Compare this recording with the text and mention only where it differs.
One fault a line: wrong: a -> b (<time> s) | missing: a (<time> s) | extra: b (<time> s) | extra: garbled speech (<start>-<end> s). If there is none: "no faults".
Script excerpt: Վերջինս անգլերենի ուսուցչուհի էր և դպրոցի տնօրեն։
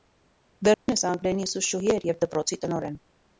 no faults